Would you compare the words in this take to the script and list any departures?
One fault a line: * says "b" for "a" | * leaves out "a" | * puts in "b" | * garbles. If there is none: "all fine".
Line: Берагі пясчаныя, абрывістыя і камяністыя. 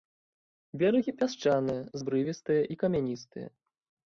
all fine